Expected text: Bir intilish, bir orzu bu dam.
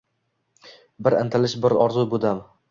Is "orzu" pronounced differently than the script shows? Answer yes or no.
no